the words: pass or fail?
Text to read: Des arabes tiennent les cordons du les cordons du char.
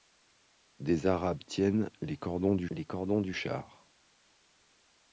pass